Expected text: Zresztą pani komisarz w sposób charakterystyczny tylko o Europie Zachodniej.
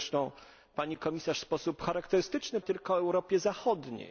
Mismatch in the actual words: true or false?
false